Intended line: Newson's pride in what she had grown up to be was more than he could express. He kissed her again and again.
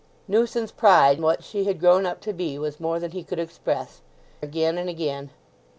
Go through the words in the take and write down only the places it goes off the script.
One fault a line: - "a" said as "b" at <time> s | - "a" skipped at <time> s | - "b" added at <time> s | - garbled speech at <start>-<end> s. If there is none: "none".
- "in" skipped at 1.2 s
- "He kissed her" skipped at 4.0 s